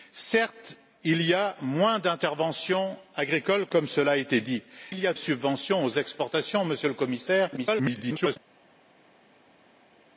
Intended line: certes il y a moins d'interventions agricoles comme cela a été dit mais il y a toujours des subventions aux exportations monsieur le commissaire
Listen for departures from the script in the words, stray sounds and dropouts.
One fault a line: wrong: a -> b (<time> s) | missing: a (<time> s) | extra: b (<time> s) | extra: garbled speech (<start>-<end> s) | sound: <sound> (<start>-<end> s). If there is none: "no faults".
missing: mais (4.6 s)
missing: toujours des (5.1 s)
extra: garbled speech (7.6-8.4 s)